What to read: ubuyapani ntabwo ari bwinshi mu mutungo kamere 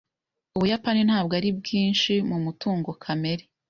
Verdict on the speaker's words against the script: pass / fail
pass